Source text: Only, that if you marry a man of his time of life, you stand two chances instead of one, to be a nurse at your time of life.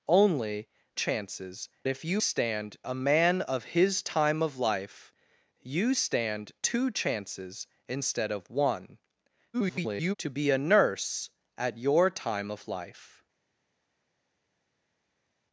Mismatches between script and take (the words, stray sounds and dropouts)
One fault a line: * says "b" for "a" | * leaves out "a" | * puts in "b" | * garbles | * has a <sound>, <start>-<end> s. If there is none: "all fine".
* says "chances" for "that"
* says "stand" for "marry"
* garbles